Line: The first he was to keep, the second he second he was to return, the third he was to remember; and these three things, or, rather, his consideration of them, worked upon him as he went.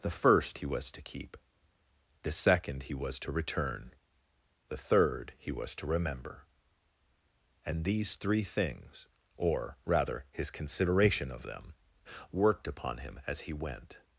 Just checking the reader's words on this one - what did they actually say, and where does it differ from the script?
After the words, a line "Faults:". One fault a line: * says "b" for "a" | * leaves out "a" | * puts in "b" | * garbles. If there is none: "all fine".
The first he was to keep, the second he was to return, the third he was to remember; and these three things, or, rather, his consideration of them, worked upon him as he went.
Faults:
* leaves out "second he"